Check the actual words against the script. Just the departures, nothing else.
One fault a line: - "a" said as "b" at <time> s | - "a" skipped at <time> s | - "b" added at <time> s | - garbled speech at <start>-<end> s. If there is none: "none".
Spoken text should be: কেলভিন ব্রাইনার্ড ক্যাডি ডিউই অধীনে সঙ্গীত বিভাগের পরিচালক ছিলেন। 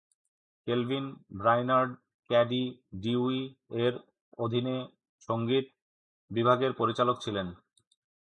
- "এর" added at 3.8 s